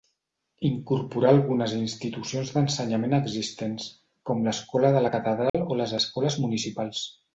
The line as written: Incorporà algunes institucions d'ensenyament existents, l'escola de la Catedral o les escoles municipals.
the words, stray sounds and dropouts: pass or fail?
fail